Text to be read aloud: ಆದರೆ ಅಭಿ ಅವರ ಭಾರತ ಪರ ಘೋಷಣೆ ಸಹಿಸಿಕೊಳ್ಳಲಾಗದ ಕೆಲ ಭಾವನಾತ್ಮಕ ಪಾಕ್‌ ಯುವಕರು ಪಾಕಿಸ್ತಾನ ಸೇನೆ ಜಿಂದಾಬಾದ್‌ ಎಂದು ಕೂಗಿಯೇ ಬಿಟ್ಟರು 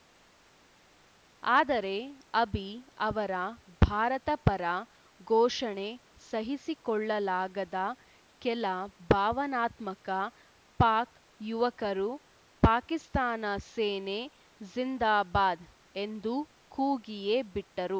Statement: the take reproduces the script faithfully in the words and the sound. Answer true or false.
true